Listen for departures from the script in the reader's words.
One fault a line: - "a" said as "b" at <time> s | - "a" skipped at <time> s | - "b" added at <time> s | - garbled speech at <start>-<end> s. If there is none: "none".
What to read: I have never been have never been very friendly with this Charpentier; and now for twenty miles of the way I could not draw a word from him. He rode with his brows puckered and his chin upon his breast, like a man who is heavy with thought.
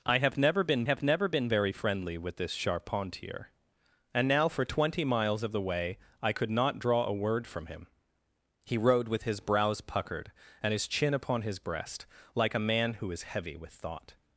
none